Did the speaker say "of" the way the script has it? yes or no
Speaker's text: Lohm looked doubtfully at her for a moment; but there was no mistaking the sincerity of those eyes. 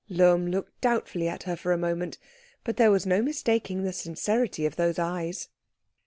yes